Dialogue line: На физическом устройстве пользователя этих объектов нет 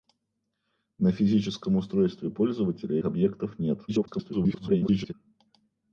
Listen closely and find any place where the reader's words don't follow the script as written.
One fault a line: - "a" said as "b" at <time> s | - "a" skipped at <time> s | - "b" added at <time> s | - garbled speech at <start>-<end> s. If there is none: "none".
- "этих" skipped at 3.0 s
- garbled speech at 3.9-5.1 s